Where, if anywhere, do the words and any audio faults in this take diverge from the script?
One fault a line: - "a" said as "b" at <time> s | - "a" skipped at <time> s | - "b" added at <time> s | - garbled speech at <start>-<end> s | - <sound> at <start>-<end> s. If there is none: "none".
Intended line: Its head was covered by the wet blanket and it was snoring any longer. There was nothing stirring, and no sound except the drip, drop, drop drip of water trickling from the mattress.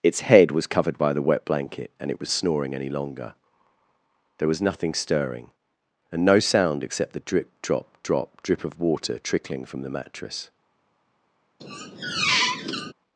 - squeak at 11.6-12.9 s